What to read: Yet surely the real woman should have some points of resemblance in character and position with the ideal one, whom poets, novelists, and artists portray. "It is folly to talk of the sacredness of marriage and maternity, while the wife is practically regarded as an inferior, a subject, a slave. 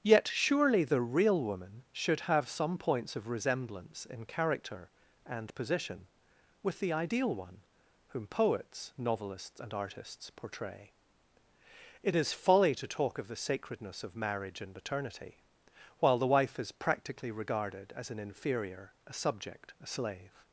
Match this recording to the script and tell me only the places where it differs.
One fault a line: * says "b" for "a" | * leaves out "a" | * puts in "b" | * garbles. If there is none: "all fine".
all fine